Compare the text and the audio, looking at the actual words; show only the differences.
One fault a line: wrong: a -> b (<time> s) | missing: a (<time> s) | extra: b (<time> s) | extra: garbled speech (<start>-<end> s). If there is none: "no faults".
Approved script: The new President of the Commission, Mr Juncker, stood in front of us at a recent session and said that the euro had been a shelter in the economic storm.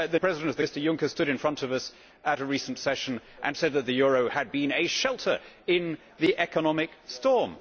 missing: new (0.2 s)
missing: Commission (0.6 s)